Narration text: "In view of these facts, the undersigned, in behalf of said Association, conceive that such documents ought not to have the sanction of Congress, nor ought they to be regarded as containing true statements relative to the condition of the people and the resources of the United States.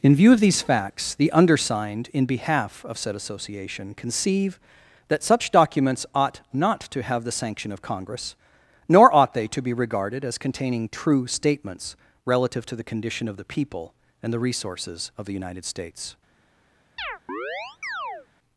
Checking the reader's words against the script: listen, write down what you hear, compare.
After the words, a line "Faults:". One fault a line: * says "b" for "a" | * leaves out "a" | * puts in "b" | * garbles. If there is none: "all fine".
"In view of these facts, the undersigned, in behalf of said Association, conceive that such documents ought not to have the sanction of Congress, nor ought they to be regarded as containing true statements relative to the condition of the people and the resources of the United States.
Faults:
all fine